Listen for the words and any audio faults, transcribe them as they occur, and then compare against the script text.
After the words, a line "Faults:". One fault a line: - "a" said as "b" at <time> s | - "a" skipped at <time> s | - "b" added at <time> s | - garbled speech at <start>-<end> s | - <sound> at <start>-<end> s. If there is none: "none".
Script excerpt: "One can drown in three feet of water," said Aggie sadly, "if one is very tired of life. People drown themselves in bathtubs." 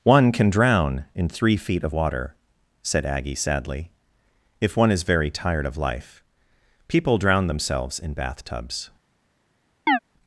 "One can drown in three feet of water," said Aggie sadly, "if one is very tired of life. People drown themselves in bathtubs."
Faults:
- chirp at 9.9-10.0 s